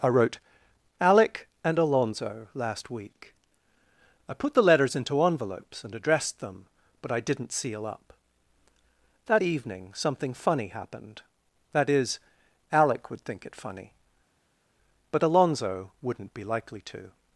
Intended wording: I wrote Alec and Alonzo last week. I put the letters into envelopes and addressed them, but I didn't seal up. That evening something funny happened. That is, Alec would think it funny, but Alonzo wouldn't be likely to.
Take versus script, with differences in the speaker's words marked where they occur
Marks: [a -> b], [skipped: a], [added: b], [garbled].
I wrote Alec and Alonzo last week. I put the letters into envelopes and addressed them, but I didn't seal up. That evening something funny happened. That is, Alec would think it funny, but Alonzo wouldn't be likely to.